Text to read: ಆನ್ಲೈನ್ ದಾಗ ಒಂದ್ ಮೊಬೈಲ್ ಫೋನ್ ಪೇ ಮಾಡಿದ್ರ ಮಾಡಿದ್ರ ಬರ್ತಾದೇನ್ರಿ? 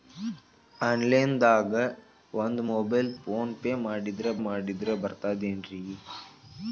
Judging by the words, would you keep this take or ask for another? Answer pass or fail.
pass